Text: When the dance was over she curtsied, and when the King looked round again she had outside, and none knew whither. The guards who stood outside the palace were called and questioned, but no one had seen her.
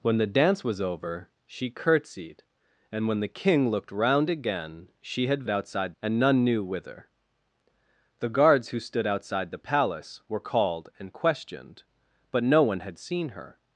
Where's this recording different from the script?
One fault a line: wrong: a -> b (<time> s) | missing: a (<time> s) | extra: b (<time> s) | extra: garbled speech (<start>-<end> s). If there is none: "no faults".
no faults